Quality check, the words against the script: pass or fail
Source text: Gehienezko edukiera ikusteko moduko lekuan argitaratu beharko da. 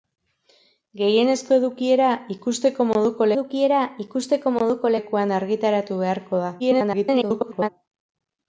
fail